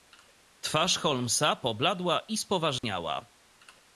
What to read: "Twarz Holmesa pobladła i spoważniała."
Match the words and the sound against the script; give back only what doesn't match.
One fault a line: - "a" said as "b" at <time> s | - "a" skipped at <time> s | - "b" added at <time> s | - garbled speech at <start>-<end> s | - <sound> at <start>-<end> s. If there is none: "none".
- dropout at 2.8-2.8 s